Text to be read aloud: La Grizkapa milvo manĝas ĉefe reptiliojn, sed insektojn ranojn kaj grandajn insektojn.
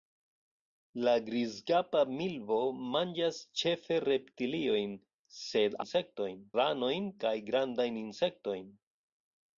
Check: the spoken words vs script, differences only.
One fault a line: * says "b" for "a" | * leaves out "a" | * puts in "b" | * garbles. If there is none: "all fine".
all fine